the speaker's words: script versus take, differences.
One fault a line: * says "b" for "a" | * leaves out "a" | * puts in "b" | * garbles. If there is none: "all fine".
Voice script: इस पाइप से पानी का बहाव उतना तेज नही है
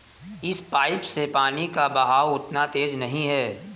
all fine